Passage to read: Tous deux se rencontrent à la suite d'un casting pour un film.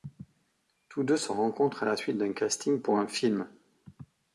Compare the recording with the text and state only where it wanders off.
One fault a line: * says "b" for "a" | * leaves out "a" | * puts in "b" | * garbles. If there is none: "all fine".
all fine